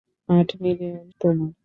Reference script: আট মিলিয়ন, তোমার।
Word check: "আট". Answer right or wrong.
right